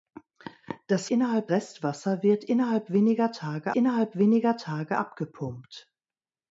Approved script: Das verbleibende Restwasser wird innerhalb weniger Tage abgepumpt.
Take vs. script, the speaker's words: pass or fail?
fail